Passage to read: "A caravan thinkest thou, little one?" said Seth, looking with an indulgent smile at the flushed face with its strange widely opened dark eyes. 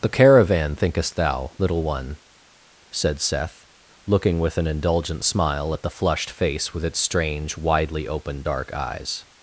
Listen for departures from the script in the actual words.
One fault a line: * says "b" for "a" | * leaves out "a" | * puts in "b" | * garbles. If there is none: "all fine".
* says "The" for "A"